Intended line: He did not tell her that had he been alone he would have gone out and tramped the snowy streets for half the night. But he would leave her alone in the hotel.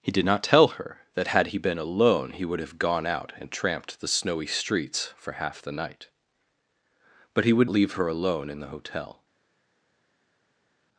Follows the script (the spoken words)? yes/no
yes